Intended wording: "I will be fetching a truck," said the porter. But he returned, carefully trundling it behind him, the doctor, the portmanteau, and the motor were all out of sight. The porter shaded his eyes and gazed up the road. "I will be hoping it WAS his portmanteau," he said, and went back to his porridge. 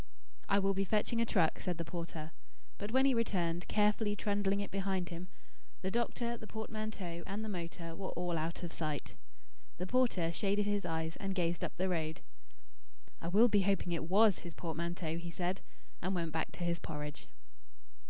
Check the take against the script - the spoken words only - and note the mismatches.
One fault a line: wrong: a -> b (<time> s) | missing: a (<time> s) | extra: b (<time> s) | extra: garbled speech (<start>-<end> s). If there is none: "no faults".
extra: when (2.9 s)